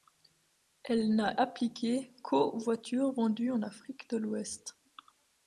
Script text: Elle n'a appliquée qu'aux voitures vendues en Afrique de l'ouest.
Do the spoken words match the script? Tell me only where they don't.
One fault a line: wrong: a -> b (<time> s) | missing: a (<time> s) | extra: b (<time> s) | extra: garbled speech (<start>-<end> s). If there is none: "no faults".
no faults